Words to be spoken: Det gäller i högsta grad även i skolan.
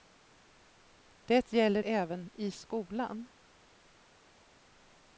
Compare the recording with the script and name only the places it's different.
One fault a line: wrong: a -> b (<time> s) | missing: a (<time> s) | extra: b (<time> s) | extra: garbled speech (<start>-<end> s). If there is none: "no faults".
missing: i högsta grad (1.8 s)